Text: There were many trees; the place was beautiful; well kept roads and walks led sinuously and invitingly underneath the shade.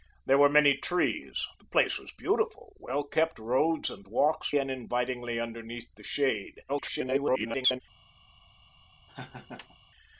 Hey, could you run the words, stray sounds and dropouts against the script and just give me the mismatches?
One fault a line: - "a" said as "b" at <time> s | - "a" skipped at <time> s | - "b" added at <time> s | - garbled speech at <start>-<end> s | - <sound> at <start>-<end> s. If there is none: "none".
- "led sinuously" skipped at 4.5 s
- garbled speech at 6.7-7.8 s
- laugh at 9.1-9.8 s